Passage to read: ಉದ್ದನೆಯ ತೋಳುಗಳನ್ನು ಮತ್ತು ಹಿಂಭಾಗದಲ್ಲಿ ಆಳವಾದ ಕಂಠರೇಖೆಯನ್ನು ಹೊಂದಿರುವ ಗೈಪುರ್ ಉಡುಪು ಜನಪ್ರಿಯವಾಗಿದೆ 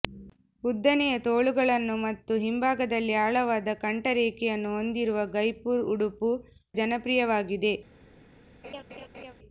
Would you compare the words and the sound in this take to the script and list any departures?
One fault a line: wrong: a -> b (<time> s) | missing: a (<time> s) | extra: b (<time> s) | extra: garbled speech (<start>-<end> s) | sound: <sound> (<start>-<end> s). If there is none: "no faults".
sound: laugh (8.6-9.3 s)